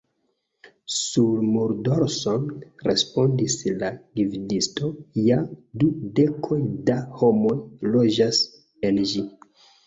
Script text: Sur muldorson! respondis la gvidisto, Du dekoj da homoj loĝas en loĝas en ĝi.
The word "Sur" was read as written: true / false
true